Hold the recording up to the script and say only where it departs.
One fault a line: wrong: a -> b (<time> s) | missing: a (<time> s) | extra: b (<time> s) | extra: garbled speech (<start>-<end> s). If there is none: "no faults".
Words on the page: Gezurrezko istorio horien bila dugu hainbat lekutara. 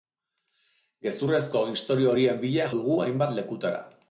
no faults